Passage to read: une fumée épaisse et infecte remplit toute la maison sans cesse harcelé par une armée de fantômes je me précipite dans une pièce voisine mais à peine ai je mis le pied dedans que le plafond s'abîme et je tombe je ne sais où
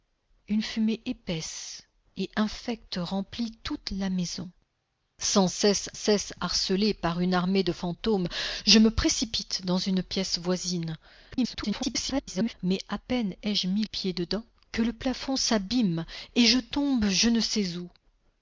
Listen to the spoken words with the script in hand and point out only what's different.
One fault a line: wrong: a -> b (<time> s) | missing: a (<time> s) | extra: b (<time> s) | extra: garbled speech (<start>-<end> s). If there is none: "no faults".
extra: cesse (5.9 s)
extra: garbled speech (11.3-12.5 s)
missing: le (13.8 s)